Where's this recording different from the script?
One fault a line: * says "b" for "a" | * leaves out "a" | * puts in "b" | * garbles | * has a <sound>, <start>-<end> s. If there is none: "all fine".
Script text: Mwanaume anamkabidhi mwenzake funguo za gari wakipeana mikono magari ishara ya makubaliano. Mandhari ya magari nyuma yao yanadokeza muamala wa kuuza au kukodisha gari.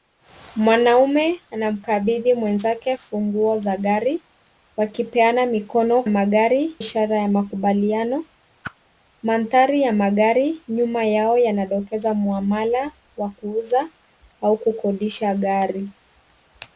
* has a whoosh, 8.6-8.8 s